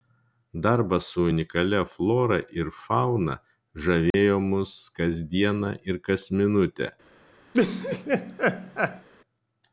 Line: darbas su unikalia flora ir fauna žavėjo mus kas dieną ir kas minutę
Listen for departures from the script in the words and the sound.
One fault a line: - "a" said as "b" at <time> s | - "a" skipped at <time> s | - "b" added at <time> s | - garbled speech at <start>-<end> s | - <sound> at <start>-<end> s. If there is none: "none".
- dropout at 4.1-4.1 s
- laugh at 7.5-9.1 s